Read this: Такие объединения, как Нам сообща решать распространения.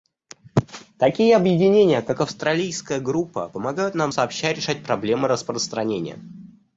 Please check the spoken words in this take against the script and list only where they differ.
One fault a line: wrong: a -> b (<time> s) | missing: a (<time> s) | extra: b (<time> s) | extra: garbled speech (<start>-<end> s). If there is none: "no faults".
extra: Австралийская группа помогают (2.2 s)
extra: проблемы (4.8 s)